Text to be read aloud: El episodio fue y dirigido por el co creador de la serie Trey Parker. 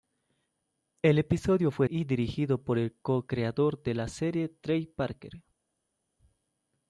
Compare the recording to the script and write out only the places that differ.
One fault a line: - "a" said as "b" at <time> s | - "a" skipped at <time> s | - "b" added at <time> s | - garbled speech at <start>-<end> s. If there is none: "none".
none